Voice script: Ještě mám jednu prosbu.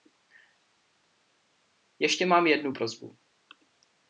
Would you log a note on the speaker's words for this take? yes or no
no